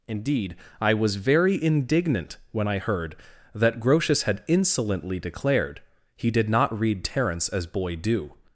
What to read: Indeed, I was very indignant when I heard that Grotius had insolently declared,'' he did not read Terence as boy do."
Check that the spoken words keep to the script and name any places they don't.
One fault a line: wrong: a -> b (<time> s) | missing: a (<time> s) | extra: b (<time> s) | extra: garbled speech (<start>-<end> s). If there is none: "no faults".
no faults